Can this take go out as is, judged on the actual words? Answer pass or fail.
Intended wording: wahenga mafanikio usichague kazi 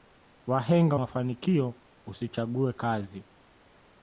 pass